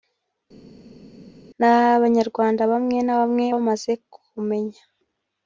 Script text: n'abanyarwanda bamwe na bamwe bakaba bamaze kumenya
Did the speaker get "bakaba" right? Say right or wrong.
wrong